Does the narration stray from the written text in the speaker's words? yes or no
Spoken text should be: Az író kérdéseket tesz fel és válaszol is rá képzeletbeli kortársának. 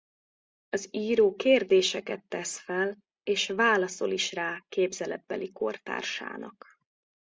no